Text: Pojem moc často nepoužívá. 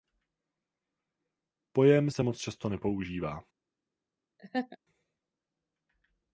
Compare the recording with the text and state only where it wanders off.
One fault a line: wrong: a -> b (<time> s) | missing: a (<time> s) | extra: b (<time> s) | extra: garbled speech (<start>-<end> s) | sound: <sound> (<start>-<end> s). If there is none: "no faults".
extra: se (2.1 s)
sound: laugh (4.4-4.8 s)